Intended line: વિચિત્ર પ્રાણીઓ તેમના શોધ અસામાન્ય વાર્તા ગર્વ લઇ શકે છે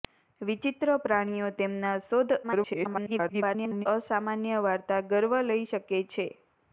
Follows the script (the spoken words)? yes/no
no